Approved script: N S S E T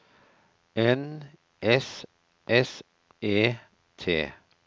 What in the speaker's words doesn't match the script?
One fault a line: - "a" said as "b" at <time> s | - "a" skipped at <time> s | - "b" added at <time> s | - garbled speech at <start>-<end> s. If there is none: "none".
none